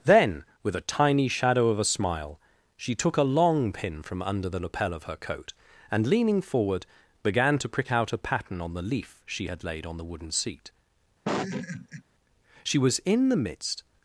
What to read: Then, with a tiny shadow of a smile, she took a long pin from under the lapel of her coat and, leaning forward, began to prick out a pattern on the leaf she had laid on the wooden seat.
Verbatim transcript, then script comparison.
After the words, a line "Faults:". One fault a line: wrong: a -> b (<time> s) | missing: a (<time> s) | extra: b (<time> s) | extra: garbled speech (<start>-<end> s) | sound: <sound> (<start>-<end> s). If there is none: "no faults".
Then, with a tiny shadow of a smile, she took a long pin from under the lapel of her coat and, leaning forward, began to prick out a pattern on the leaf she had laid on the wooden seat. She was in the midst
Faults:
sound: laugh (11.2-12.0 s)
extra: She was in the midst (12.6 s)